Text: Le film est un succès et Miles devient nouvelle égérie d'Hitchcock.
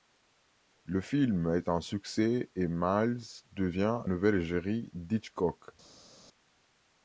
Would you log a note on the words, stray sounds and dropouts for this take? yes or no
no